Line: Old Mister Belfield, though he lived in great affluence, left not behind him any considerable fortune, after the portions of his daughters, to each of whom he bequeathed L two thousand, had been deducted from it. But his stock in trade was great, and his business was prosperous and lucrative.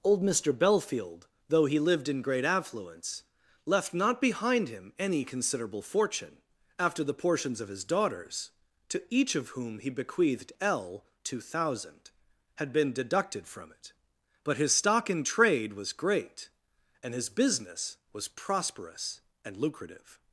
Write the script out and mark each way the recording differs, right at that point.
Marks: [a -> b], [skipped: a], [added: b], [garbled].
Old Mister Belfield, though he lived in great affluence, left not behind him any considerable fortune, after the portions of his daughters, to each of whom he bequeathed L two thousand, had been deducted from it. But his stock in trade was great, and his business was prosperous and lucrative.